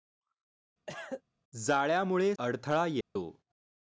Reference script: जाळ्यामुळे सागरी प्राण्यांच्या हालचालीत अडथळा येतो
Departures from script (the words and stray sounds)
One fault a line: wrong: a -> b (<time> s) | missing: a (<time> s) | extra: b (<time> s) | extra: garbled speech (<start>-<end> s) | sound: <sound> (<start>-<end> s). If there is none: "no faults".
sound: cough (0.9-1.2 s)
missing: सागरी प्राण्यांच्या हालचालीत (2.3 s)
sound: dropout (3.0-3.2 s)